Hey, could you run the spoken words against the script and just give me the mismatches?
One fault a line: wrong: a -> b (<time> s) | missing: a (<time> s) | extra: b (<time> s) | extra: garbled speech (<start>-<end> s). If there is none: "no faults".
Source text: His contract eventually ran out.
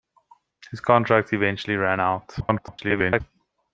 extra: garbled speech (2.4-3.2 s)